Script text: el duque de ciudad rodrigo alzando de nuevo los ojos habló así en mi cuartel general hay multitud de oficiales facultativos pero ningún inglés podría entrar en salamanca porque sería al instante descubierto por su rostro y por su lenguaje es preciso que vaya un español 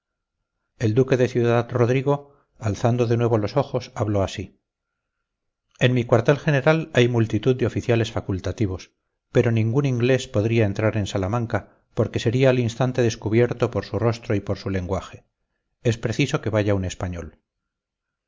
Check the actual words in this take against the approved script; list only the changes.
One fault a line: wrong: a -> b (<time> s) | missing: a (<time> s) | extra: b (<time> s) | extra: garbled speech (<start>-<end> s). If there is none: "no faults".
no faults